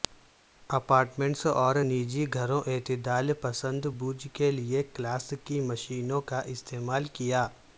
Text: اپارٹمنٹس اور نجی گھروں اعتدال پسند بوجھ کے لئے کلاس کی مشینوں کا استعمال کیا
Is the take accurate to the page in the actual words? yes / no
yes